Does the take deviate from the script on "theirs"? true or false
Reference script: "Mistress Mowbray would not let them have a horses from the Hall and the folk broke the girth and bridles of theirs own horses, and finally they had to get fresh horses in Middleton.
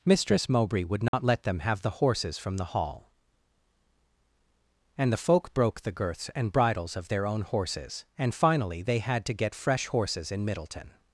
true